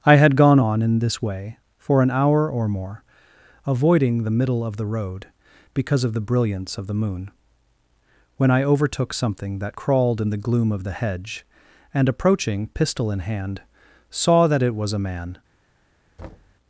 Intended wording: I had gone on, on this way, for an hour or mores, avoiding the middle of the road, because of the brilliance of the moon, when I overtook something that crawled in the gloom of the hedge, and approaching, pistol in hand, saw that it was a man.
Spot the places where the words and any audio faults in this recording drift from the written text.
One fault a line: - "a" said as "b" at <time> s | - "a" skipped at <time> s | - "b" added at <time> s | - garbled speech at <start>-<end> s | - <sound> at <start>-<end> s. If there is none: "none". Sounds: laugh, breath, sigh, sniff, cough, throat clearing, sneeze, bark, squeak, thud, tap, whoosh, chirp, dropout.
- "on" said as "in" at 0.8 s
- "mores" said as "more" at 2.7 s
- thud at 16.2-16.6 s